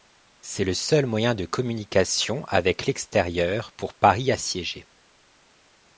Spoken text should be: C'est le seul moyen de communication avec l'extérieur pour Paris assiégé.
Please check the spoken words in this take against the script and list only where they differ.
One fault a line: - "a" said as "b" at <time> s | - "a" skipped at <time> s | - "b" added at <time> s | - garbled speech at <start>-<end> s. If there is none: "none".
none